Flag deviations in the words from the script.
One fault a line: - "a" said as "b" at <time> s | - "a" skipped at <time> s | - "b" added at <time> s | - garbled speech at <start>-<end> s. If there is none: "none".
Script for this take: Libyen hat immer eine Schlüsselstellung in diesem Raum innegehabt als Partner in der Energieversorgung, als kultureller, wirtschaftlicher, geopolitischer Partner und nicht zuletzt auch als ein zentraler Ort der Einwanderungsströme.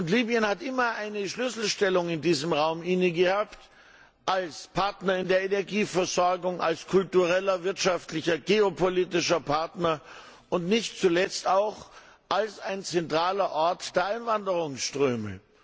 none